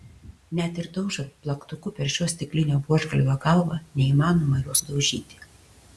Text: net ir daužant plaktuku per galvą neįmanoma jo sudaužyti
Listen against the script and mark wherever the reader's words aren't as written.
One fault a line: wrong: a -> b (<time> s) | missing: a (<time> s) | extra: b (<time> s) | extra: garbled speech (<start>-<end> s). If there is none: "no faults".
extra: šio stiklinio buožgalvio (2.1 s)